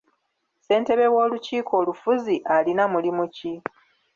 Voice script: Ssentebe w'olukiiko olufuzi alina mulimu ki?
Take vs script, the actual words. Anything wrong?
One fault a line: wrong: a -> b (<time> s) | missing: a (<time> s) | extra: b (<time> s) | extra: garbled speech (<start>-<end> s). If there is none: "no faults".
no faults